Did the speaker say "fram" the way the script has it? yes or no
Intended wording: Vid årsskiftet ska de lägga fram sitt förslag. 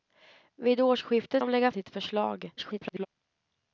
no